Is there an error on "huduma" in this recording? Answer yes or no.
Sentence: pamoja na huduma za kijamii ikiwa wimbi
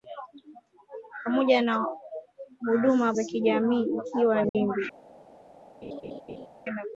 no